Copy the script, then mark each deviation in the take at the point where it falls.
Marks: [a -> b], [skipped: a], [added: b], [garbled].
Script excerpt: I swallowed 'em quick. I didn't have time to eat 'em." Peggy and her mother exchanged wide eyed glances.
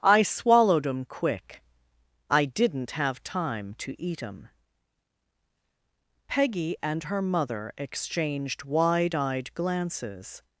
I swallowed 'em quick. I didn't have time to eat 'em." Peggy and her mother exchanged wide eyed glances.